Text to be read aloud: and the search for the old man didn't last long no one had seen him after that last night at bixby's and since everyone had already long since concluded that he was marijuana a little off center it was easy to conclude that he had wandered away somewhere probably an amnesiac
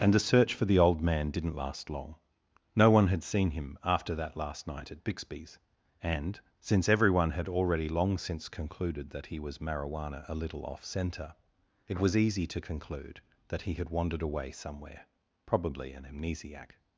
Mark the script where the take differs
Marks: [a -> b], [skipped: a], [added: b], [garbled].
and the search for the old man didn't last long no one had seen him after that last night at bixby's and since everyone had already long since concluded that he was marijuana a little off center it was easy to conclude that he had wandered away somewhere probably an amnesiac